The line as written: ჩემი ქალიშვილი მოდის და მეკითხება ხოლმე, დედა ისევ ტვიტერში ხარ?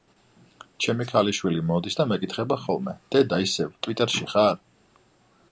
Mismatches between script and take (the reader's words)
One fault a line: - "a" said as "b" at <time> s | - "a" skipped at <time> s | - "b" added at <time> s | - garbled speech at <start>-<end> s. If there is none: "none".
none